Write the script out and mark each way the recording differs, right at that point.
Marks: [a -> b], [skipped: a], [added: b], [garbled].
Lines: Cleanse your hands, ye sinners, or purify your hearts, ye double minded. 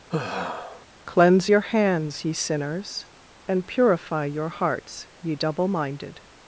Cleanse your hands, ye sinners, [or -> and] purify your hearts, ye double minded.